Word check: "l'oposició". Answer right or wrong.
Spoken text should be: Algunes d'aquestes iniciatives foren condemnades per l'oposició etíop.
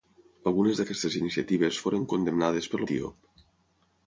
wrong